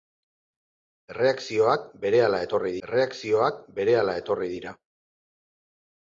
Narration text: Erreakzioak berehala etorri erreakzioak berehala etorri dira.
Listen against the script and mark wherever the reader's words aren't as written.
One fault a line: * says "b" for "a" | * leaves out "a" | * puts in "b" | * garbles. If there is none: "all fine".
all fine